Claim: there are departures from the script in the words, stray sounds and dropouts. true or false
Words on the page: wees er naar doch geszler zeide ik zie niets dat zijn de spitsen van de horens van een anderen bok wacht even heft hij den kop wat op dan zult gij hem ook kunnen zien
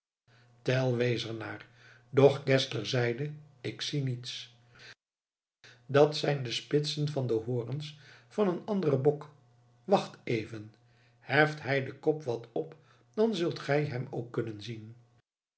false